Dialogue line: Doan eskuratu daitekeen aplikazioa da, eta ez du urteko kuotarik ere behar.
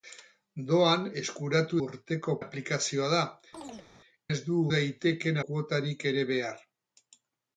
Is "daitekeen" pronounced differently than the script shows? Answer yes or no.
yes